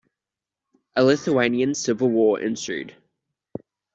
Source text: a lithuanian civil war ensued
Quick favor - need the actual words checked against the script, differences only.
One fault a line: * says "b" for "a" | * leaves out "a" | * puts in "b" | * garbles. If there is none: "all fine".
all fine